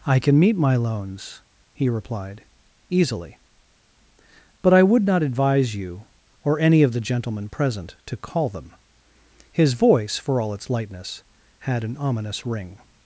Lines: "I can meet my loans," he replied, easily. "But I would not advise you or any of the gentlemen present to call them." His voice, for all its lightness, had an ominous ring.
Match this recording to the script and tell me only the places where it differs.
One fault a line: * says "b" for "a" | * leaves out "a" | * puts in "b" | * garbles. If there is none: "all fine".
all fine